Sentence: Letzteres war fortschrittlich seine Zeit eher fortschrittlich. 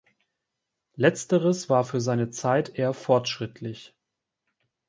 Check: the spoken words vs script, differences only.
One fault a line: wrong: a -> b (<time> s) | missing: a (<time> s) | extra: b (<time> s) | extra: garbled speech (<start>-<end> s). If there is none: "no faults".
wrong: fortschrittlich -> für (1.8 s)